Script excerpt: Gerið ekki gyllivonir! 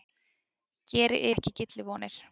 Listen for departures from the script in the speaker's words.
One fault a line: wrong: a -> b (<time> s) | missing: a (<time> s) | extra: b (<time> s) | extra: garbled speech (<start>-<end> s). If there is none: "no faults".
no faults